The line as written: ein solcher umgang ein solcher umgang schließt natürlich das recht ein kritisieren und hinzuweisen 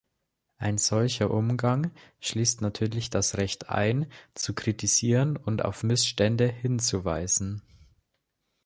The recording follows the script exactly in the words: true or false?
false